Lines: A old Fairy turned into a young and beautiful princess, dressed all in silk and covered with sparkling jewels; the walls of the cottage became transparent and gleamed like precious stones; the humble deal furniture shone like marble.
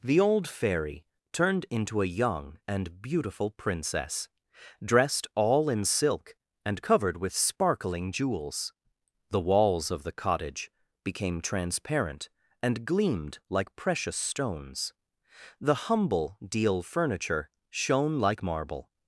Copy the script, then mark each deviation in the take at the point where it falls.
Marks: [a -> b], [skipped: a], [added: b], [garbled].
[A -> The] old Fairy turned into a young and beautiful princess, dressed all in silk and covered with sparkling jewels; the walls of the cottage became transparent and gleamed like precious stones; the humble deal furniture shone like marble.